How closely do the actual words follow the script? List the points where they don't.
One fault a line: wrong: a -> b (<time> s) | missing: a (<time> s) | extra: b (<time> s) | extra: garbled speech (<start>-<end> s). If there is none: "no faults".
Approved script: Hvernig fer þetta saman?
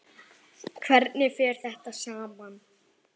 no faults